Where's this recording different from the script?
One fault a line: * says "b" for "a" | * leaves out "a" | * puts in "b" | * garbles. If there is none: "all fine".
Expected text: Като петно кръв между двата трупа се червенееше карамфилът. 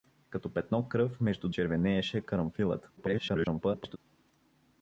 * leaves out "двата трупа се"
* garbles